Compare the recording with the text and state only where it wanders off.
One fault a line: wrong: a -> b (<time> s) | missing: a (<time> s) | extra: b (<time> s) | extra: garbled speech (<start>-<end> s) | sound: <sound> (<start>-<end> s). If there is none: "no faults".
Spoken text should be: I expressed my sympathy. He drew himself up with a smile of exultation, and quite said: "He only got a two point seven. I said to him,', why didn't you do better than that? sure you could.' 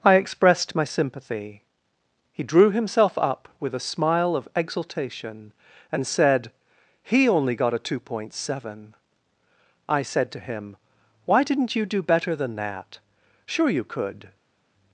missing: quite (6.1 s)